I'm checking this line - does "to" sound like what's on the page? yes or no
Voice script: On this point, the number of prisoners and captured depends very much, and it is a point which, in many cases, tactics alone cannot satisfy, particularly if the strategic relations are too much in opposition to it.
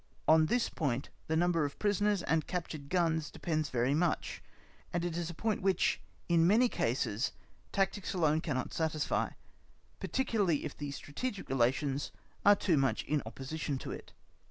yes